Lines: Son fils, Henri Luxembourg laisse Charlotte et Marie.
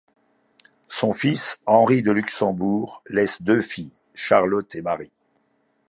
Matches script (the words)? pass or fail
fail